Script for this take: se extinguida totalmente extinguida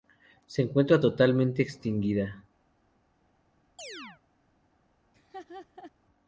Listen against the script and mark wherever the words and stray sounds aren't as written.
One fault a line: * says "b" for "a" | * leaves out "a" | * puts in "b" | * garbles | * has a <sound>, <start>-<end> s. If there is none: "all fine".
* says "encuentra" for "extinguida"
* has a chirp, 3.8-4.2 s
* has a laugh, 5.1-5.9 s